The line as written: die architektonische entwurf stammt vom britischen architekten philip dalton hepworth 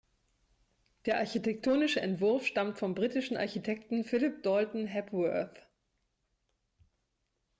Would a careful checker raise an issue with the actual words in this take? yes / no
yes